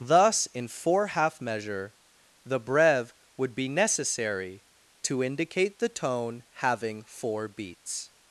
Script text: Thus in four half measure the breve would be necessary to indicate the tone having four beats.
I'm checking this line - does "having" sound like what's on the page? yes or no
yes